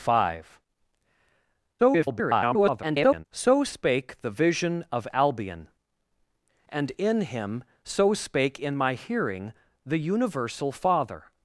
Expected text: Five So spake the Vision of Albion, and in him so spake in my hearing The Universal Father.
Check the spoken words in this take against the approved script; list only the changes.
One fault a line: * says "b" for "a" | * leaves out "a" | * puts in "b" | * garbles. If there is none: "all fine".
* garbles